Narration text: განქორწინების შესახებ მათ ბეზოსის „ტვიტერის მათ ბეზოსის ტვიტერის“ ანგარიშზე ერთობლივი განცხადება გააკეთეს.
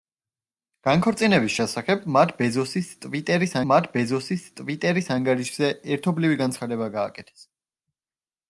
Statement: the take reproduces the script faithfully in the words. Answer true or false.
true